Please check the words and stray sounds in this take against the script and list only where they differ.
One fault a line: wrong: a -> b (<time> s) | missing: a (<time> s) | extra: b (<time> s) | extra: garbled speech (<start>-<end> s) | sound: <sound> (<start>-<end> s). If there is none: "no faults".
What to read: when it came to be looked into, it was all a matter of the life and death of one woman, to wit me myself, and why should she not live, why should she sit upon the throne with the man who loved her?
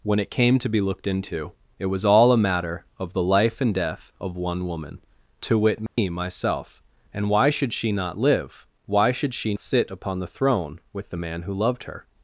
sound: dropout (5.9-6.0 s)